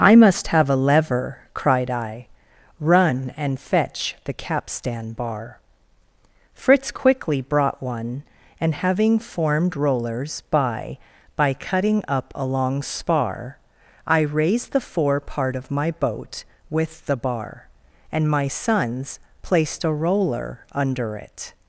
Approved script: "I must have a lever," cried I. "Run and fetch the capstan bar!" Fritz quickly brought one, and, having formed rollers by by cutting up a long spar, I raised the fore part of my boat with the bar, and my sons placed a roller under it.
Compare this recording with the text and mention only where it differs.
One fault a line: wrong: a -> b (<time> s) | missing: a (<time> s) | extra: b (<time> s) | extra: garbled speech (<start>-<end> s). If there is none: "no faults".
no faults